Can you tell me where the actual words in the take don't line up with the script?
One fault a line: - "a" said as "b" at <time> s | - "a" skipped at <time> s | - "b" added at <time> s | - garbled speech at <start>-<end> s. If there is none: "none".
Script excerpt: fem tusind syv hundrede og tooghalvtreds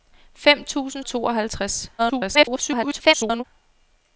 - "syv hundrede" skipped at 1.0 s
- garbled speech at 2.0-3.4 s